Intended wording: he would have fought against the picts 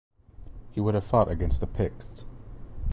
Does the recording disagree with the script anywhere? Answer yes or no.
no